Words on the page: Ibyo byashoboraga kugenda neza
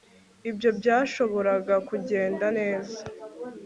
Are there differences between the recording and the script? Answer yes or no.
no